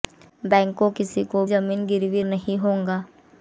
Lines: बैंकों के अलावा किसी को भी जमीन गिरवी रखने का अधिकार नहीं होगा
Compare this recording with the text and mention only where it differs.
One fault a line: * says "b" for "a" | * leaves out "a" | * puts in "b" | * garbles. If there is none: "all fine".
* leaves out "के अलावा"
* leaves out "भी"
* leaves out "रखने का अधिकार"